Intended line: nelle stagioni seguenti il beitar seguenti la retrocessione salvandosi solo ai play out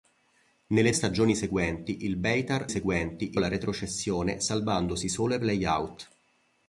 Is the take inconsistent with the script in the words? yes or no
no